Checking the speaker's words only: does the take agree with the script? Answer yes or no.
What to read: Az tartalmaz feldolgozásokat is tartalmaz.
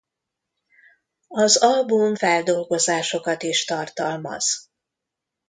no